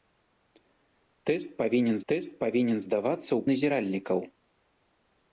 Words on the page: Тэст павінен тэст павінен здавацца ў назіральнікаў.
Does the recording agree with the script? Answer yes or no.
yes